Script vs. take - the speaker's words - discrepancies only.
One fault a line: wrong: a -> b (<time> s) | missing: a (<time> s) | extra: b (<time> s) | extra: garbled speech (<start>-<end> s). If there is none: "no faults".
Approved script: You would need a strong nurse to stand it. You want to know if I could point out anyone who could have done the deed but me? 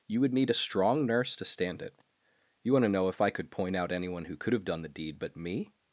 no faults